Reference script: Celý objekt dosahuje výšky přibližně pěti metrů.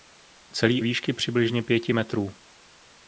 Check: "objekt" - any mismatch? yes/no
yes